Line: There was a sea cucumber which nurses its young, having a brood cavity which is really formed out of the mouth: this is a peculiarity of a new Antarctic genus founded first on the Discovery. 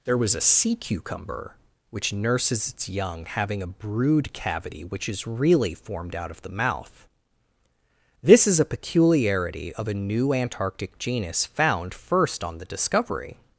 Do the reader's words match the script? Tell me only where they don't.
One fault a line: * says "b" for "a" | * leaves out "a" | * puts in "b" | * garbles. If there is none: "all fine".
* says "found" for "founded"